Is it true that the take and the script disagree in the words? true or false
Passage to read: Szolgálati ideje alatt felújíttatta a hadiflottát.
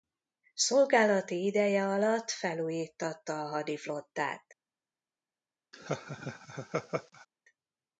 false